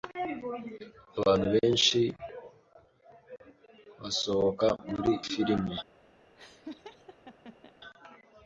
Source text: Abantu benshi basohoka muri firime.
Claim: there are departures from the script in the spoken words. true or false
false